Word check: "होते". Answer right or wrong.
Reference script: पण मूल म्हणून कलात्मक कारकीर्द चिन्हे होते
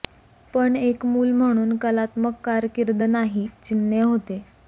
right